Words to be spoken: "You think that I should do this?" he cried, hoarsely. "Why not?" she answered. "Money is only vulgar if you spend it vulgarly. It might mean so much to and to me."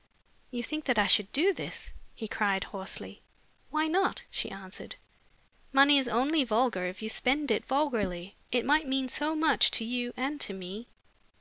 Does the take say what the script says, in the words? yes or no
no